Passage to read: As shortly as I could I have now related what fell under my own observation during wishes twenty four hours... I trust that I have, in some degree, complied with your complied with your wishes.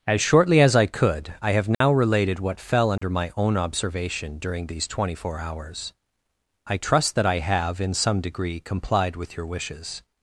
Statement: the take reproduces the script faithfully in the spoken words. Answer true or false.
false